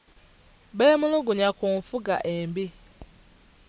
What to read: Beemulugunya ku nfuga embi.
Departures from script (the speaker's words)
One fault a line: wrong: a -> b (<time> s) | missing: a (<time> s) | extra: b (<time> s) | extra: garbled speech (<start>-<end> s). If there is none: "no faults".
no faults